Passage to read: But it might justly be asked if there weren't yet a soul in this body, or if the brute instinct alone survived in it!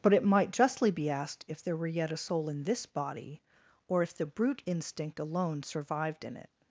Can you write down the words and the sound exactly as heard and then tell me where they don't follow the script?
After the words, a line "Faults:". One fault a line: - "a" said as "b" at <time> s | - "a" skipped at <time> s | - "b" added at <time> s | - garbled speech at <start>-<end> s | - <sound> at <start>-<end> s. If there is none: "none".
But it might justly be asked if there were yet a soul in this body, or if the brute instinct alone survived in it!
Faults:
- "weren't" said as "were" at 1.8 s